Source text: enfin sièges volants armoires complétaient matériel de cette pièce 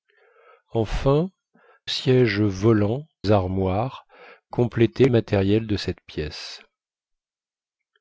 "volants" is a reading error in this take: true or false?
false